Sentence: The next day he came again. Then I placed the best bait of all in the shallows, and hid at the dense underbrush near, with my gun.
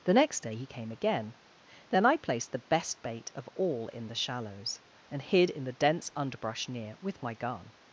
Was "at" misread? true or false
true